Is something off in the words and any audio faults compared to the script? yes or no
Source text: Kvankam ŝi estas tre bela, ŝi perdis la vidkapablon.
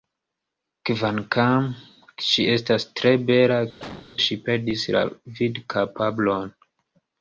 yes